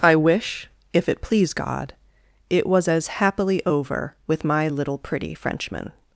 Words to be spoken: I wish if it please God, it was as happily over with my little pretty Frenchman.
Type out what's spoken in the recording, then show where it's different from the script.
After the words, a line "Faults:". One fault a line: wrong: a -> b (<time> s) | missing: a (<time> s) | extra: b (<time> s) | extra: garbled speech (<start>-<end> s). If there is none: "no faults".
I wish if it please God, it was as happily over with my little pretty Frenchman.
Faults:
no faults